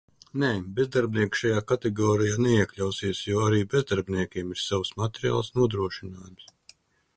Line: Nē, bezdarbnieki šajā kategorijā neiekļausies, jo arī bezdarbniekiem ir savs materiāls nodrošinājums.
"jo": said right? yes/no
yes